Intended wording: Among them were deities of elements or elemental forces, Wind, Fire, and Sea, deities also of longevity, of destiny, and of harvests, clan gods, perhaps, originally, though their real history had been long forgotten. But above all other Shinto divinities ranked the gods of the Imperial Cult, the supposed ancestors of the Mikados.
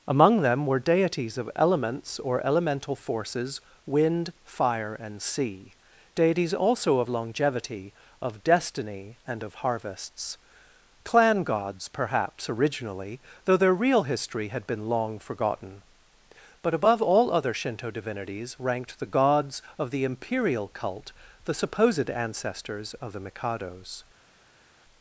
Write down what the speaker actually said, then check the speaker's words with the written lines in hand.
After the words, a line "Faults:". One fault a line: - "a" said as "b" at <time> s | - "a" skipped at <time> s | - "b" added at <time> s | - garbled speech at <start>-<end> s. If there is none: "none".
Among them were deities of elements or elemental forces, Wind, Fire, and Sea, deities also of longevity, of destiny, and of harvests, clan gods, perhaps, originally, though their real history had been long forgotten. But above all other Shinto divinities ranked the gods of the Imperial Cult, the supposed ancestors of the Mikados.
Faults:
none